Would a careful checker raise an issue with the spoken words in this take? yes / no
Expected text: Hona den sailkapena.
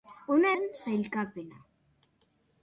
no